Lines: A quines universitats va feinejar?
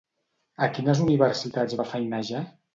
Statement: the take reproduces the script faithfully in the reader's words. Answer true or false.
true